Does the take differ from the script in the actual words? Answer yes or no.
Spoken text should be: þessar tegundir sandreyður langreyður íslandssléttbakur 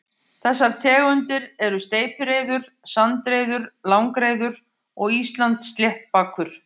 yes